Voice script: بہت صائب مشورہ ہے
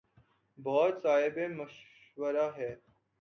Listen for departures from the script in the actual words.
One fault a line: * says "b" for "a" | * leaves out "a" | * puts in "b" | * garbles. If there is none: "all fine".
all fine